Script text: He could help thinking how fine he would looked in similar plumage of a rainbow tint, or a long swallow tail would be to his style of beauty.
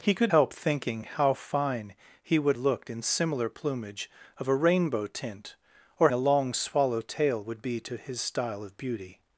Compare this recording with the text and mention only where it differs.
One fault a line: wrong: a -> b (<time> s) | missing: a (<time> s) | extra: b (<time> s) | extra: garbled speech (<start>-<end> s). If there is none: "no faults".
no faults